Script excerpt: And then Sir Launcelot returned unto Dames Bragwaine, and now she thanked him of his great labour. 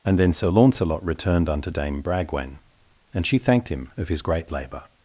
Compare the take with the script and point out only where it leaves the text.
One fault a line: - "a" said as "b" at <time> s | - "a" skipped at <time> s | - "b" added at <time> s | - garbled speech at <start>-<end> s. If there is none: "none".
- "Dames" said as "Dame" at 1.7 s
- "now" skipped at 3.3 s